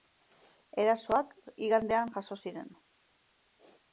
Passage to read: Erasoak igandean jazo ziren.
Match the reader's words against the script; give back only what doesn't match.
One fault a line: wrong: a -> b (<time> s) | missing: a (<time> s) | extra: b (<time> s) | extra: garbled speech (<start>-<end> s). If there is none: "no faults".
no faults